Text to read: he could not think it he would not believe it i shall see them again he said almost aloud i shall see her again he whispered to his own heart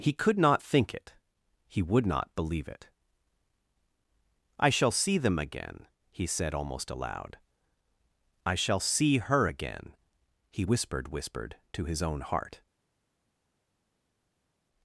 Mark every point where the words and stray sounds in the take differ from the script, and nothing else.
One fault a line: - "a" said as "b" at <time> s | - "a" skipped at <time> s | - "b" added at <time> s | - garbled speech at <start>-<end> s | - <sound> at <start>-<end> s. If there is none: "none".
- "whispered" added at 11.1 s